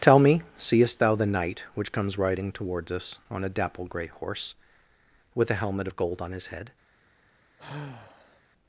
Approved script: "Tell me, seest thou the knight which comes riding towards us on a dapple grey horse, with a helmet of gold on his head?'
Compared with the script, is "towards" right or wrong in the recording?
right